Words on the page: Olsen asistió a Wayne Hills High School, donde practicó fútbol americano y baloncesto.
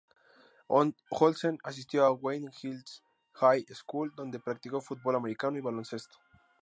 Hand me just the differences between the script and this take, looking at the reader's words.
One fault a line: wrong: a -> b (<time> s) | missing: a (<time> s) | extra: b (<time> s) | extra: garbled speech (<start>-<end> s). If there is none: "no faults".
no faults